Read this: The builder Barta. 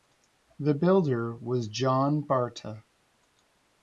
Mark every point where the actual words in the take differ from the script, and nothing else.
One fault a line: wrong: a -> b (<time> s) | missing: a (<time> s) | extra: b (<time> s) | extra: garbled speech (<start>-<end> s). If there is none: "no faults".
extra: was John (1.3 s)